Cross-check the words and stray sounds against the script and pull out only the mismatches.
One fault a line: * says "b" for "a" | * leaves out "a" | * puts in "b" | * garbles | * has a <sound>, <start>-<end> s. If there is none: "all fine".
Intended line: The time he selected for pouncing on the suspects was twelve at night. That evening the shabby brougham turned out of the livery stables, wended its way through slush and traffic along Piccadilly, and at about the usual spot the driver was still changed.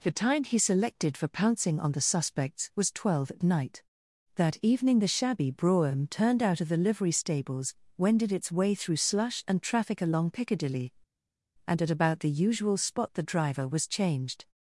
* leaves out "still"